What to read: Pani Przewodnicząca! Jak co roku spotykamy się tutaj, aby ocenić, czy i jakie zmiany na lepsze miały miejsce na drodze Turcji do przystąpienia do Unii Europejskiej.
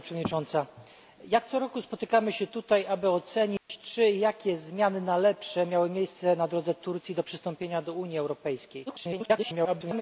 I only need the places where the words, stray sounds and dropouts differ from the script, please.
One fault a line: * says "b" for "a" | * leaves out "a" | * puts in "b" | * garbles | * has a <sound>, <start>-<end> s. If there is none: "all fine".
* has a dropout, 3.6-3.7 s
* garbles